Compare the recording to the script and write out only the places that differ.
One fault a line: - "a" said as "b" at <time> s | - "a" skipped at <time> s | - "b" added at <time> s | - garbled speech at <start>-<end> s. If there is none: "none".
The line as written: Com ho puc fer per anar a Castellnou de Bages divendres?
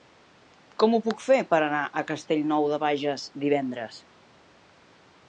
none